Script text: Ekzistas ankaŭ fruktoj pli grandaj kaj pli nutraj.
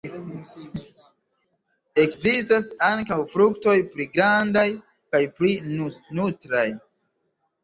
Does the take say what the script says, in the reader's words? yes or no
yes